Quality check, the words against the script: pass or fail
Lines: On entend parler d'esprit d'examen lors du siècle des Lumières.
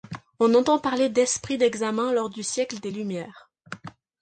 pass